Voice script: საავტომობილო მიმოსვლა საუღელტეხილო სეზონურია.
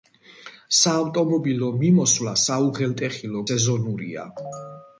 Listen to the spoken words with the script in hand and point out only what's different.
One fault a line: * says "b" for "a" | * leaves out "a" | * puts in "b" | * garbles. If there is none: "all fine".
all fine